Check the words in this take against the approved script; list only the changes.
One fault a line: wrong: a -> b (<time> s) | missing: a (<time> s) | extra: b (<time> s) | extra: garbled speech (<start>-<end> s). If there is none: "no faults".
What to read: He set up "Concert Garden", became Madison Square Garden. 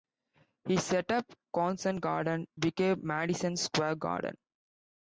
no faults